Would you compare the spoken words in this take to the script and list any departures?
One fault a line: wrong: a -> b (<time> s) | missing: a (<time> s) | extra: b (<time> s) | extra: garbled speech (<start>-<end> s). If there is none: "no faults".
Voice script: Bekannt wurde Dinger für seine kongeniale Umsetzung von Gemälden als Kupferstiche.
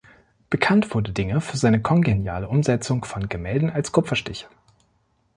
no faults